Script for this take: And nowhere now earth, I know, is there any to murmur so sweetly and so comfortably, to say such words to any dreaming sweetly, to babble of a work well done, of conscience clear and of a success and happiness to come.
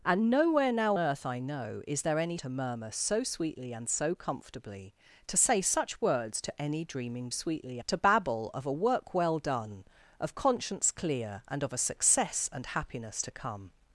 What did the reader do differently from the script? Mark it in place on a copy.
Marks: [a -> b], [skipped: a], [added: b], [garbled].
And nowhere now earth, I know, is there any to murmur so sweetly and so comfortably, to say such words to any dreaming sweetly, to babble of a work well done, of conscience clear and of a success and happiness to come.